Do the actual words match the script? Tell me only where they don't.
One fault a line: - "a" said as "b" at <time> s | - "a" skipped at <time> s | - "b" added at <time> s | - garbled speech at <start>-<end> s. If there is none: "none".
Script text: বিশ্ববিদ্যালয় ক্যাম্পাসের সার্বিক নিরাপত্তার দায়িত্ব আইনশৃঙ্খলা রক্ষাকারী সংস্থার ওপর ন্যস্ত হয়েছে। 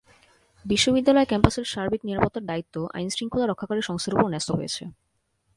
none